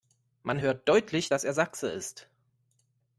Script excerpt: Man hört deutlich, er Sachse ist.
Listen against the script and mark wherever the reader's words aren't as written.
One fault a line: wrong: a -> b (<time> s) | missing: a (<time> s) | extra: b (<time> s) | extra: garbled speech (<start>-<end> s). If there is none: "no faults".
extra: dass (1.3 s)